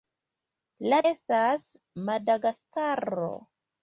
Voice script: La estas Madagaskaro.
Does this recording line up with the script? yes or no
yes